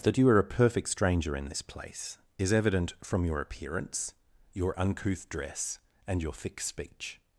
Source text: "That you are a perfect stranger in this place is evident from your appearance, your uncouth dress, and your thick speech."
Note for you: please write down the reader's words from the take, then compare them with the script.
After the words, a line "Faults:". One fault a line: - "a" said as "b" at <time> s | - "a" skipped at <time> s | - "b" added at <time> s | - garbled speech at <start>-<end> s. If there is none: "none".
"That you are a perfect stranger in this place is evident from your appearance, your uncouth dress, and your thick speech."
Faults:
none